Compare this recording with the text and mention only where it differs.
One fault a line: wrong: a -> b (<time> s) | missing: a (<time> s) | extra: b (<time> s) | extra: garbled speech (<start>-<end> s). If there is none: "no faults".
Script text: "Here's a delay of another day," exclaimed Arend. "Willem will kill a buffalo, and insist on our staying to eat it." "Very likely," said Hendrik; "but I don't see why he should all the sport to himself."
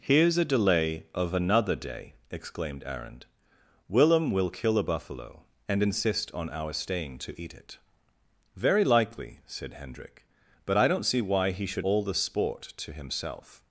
no faults